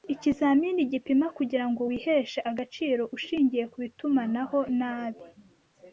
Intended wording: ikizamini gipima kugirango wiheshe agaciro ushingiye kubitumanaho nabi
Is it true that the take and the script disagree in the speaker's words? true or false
false